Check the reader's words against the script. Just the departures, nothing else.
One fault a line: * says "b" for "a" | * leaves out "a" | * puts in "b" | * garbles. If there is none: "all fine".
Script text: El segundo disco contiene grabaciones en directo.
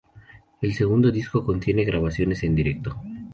all fine